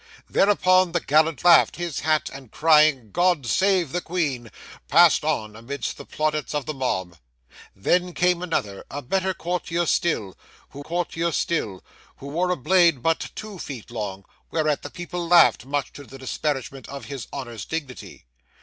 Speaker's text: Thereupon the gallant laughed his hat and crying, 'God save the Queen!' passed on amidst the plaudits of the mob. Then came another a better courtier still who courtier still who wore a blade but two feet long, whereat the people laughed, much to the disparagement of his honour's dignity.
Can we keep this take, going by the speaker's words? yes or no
yes